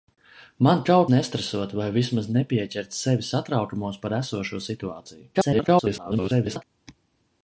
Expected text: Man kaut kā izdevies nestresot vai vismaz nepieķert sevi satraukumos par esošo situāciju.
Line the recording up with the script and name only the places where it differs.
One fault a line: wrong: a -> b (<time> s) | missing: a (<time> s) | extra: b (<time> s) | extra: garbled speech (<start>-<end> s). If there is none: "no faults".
missing: kā izdevies (1.0 s)
extra: garbled speech (5.3-6.6 s)